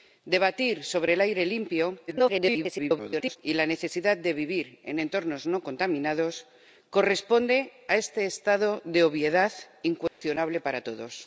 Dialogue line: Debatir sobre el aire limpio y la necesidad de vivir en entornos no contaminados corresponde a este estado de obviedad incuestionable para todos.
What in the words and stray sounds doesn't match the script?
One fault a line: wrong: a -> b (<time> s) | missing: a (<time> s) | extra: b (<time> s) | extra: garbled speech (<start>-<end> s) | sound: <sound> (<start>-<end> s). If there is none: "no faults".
extra: garbled speech (2.1-3.4 s)
sound: dropout (10.1-10.2 s)